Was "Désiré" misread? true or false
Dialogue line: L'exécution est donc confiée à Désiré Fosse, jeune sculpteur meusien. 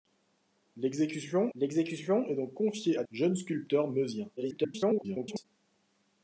true